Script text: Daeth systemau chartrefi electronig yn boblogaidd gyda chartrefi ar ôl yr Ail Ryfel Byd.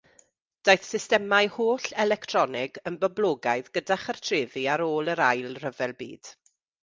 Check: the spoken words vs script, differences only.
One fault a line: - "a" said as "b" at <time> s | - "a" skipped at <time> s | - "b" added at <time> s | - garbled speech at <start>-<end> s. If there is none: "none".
- "chartrefi" said as "holl" at 1.6 s